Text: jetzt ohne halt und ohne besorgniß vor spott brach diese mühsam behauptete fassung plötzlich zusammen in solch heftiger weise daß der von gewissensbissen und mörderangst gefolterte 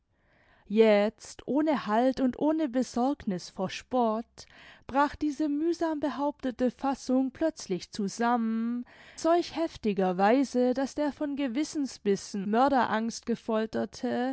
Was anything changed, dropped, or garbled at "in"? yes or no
yes